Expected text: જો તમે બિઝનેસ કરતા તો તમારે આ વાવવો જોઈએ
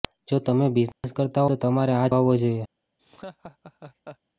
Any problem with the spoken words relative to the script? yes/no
no